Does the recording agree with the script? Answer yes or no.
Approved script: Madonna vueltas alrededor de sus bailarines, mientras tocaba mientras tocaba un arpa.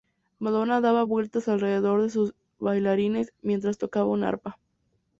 no